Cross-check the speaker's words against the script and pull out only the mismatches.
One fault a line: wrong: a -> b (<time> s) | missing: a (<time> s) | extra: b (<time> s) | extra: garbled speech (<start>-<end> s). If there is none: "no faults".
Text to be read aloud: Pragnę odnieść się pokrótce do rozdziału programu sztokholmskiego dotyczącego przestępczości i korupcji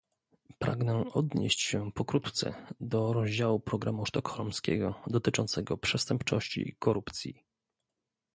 no faults